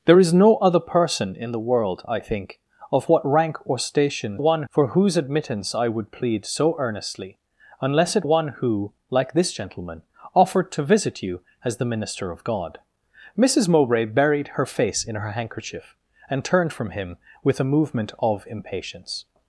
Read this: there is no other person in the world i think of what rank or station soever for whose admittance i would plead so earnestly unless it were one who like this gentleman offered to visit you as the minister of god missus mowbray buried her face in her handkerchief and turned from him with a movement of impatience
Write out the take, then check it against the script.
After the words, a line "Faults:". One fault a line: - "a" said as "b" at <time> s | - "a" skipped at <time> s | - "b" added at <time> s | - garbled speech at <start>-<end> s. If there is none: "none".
there is no other person in the world i think of what rank or station one for whose admittance i would plead so earnestly unless it one who like this gentleman offered to visit you as the minister of god missus mowbray buried her face in her handkerchief and turned from him with a movement of impatience
Faults:
- "soever" said as "one" at 4.4 s
- "were" skipped at 8.3 s